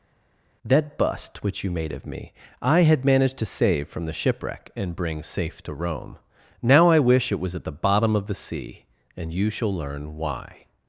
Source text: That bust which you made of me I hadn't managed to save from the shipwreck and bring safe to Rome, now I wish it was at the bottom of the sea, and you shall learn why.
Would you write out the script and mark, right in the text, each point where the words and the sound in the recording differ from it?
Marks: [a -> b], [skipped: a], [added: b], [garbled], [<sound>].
That bust which you made of me I [hadn't -> had] managed to save from the shipwreck and bring safe to Rome, now I wish it was at the bottom of the sea, and you shall learn why.